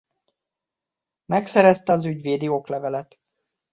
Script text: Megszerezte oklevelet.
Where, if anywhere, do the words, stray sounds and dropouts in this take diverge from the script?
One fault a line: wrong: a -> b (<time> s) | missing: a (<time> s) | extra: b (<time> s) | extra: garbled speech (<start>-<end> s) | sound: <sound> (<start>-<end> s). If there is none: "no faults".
extra: az ügyvédi (1.9 s)